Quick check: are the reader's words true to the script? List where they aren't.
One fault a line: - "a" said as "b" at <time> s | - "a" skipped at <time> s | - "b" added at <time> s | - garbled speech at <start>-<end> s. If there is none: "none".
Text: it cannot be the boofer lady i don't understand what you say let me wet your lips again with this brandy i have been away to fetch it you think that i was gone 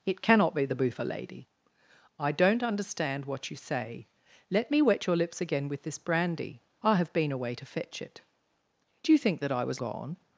none